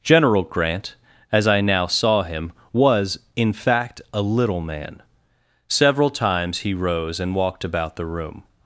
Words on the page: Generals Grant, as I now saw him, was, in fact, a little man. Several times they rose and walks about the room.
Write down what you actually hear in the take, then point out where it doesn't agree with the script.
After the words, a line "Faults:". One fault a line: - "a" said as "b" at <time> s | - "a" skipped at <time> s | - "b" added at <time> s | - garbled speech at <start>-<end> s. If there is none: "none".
General Grant, as I now saw him, was, in fact, a little man. Several times he rose and walked about the room.
Faults:
- "Generals" said as "General" at 0.0 s
- "they" said as "he" at 6.6 s
- "walks" said as "walked" at 7.3 s